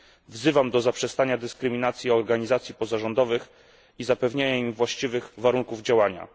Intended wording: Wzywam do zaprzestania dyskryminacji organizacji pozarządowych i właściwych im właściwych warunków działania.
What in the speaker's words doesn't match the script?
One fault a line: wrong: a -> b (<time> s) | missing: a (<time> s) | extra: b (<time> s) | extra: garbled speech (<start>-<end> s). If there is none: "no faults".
wrong: właściwych -> zapewnienia (4.0 s)